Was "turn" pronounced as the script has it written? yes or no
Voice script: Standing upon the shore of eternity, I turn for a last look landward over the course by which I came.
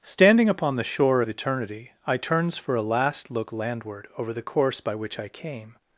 no